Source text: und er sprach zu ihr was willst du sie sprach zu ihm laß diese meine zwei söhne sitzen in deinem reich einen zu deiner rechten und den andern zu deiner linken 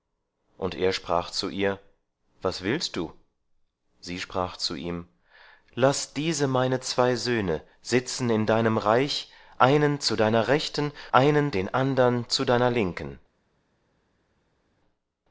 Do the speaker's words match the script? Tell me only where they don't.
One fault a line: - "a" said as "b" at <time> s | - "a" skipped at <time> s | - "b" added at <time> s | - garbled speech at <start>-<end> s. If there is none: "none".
- "und" said as "einen" at 11.1 s